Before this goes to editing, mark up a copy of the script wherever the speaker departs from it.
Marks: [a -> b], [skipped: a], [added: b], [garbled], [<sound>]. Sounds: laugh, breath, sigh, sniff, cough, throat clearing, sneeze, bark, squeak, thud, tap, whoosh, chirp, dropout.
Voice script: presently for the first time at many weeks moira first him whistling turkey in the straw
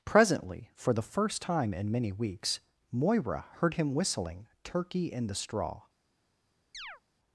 presently for the first time [at -> in] many weeks moira [first -> heard] him whistling turkey in the straw [chirp]